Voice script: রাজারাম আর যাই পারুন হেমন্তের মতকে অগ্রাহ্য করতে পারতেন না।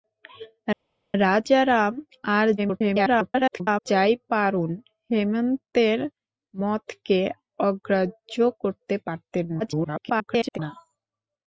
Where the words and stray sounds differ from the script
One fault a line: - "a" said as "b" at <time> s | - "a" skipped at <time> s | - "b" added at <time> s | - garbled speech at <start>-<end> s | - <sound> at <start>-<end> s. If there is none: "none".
- garbled speech at 2.6-3.9 s
- garbled speech at 9.6-10.6 s